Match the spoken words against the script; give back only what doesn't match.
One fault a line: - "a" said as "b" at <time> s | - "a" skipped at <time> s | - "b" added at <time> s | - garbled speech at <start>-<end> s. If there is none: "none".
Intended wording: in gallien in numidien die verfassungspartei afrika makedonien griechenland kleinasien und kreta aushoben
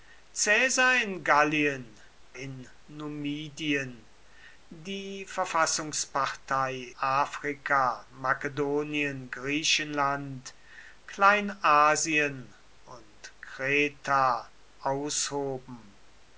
none